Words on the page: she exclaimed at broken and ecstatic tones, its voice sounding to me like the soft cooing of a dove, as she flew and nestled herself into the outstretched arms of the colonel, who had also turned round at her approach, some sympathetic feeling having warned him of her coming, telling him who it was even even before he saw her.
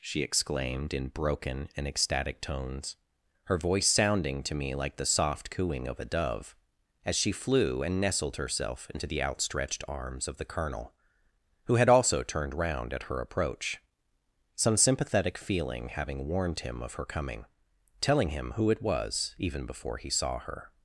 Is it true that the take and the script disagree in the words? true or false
true